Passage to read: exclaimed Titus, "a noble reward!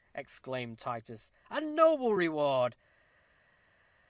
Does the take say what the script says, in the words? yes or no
yes